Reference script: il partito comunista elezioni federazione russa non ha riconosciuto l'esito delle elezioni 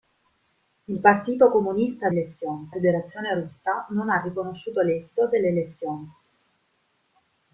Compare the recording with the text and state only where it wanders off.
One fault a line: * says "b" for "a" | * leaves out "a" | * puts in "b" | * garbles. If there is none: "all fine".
all fine